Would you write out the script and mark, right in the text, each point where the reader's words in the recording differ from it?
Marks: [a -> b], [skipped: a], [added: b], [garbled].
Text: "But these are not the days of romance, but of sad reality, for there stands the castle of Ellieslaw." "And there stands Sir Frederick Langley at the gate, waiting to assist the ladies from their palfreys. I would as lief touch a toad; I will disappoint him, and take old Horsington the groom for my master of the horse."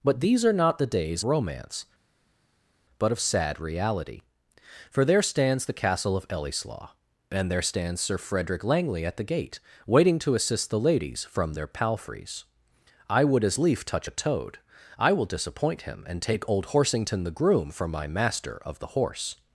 "But these are not the days [skipped: of] romance, but of sad reality, for there stands the castle of Ellieslaw." "And there stands Sir Frederick Langley at the gate, waiting to assist the ladies from their palfreys. I would as lief touch a toad; I will disappoint him, and take old Horsington the groom for my master of the horse."